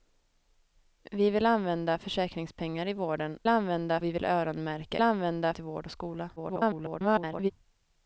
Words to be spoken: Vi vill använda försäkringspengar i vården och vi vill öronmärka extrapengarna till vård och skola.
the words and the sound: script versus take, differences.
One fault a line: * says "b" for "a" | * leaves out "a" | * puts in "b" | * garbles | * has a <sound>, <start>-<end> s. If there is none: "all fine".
* says "använda" for "och"
* says "använda" for "extrapengarna"
* garbles